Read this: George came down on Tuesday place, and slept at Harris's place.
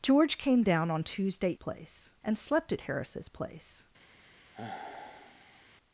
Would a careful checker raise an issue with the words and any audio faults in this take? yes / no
yes